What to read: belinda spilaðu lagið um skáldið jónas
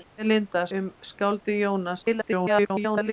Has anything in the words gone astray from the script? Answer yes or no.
yes